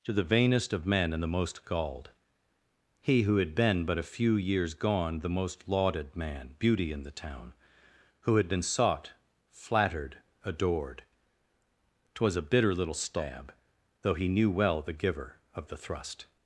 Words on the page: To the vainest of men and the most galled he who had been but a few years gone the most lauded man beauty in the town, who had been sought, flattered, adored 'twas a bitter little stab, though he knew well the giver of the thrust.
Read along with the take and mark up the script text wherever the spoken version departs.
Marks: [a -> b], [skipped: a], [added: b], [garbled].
To the vainest of men and the most galled he who had been but a few years gone the most lauded man beauty in the town, who had been sought, flattered, adored 'twas a bitter little stab, though he knew well the giver of the thrust.